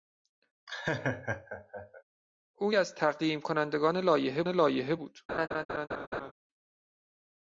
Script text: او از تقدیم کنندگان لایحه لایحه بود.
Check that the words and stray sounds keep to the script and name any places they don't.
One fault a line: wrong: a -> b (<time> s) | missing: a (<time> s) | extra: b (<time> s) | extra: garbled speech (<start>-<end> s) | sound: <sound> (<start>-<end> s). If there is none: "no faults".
sound: laugh (0.7-2.0 s)
sound: laugh (5.3-6.3 s)